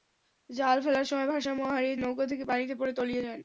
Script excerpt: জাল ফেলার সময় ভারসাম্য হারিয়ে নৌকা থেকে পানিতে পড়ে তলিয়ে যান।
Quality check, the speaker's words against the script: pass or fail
pass